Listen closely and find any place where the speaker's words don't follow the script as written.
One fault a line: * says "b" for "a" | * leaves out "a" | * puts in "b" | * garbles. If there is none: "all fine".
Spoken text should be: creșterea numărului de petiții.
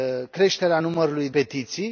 * leaves out "de"